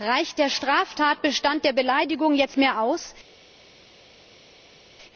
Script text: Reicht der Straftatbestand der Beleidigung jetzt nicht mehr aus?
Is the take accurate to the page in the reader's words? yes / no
no